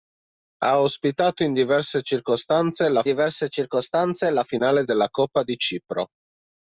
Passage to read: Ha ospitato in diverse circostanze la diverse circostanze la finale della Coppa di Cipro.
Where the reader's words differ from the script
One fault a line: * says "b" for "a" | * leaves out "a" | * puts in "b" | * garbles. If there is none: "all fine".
all fine